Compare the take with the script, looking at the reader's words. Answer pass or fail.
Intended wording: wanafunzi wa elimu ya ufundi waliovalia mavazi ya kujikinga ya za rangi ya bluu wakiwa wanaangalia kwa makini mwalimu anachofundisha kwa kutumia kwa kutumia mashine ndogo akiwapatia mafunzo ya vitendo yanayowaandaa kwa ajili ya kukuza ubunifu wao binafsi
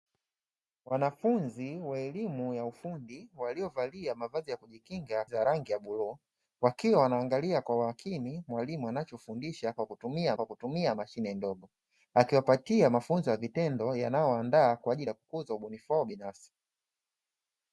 pass